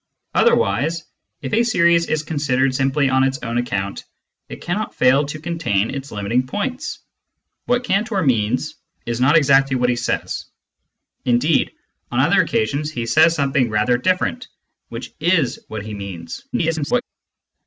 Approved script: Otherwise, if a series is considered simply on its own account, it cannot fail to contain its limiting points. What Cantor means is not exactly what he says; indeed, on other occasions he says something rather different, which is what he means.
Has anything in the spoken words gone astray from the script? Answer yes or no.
yes